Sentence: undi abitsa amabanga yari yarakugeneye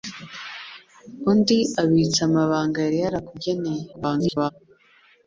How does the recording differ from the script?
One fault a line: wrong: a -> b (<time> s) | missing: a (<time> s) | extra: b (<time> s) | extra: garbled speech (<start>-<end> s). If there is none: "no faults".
extra: garbled speech (3.9-4.5 s)